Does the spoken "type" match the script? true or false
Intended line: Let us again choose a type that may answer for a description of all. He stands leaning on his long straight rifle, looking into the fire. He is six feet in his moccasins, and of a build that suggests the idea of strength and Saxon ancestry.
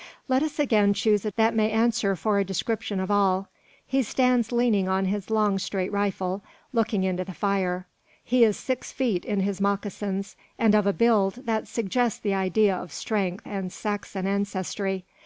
false